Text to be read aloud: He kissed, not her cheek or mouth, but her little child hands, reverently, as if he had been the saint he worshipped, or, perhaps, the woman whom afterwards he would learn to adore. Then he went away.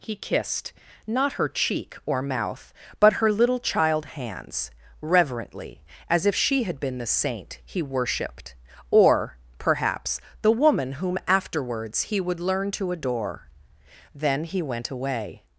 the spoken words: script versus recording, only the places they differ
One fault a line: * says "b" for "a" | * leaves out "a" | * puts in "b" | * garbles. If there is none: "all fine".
* says "she" for "he"